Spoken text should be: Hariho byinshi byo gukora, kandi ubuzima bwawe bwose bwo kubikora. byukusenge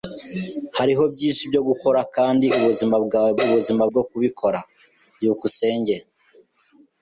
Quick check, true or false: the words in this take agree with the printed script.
false